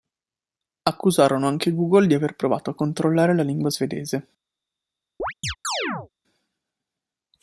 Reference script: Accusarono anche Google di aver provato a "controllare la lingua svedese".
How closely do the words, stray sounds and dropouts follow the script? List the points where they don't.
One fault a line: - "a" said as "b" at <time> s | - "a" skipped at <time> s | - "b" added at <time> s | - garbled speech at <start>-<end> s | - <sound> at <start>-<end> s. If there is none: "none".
- chirp at 5.2-6.1 s